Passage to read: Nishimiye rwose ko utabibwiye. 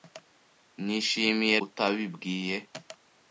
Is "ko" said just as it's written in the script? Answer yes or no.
no